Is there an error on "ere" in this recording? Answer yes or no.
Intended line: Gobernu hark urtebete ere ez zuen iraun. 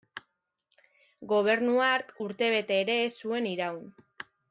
no